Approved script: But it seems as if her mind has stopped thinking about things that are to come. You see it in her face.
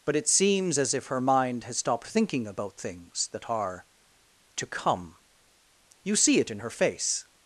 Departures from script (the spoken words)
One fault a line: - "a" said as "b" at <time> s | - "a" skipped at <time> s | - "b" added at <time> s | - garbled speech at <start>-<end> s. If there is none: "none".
none